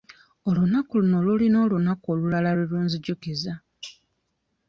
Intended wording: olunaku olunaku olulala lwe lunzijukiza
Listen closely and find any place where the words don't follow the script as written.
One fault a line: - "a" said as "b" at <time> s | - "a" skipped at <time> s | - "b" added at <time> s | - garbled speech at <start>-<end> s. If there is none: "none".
- "luno lulina" added at 1.0 s